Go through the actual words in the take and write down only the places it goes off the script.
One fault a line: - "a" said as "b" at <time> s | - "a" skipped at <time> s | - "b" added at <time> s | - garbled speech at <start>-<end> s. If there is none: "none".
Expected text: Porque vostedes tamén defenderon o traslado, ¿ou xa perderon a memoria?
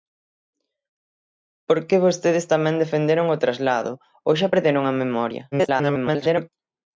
- garbled speech at 5.5-6.5 s